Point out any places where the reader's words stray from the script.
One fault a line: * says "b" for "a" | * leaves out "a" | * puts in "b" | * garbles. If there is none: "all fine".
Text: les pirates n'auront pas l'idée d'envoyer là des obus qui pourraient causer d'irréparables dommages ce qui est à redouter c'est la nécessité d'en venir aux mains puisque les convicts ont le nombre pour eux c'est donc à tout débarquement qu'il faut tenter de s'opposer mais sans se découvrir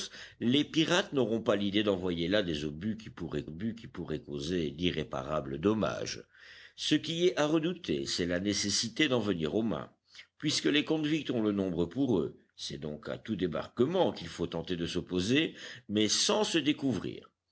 * puts in "obus qui pourraient"